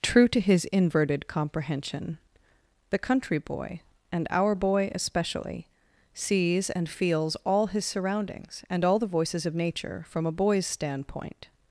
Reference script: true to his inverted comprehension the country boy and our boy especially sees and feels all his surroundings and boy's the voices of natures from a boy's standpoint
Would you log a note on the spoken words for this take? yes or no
yes